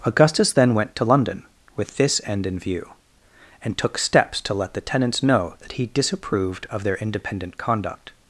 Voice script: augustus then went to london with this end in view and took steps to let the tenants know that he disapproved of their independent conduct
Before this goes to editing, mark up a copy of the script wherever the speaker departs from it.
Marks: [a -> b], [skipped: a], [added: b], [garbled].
augustus then went to london with this end in view and took steps to let the tenants know that he disapproved of their independent conduct